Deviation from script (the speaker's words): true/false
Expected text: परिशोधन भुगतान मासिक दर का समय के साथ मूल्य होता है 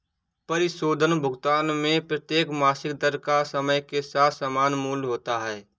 true